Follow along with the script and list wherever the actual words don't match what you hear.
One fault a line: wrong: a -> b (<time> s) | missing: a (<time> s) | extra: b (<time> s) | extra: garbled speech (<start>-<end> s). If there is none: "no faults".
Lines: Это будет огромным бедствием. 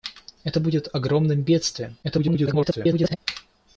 extra: garbled speech (2.0-3.2 s)